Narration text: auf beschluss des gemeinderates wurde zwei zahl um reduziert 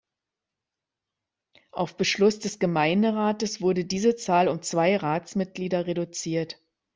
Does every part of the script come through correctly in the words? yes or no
no